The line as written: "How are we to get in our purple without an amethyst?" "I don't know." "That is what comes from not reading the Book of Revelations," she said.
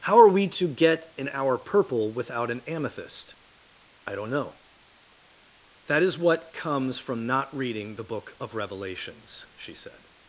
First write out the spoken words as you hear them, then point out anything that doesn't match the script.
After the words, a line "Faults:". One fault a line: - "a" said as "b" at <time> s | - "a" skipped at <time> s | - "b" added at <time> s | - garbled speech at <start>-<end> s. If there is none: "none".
"How are we to get in our purple without an amethyst?" "I don't know." "That is what comes from not reading the Book of Revelations," she said.
Faults:
none